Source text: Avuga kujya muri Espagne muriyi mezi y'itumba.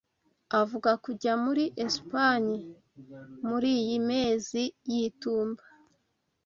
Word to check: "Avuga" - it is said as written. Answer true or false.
true